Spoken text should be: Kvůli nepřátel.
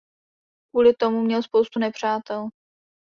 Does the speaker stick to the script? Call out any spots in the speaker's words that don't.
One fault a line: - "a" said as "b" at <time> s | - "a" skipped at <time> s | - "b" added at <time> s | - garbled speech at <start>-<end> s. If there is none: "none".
- "tomu měl spoustu" added at 0.9 s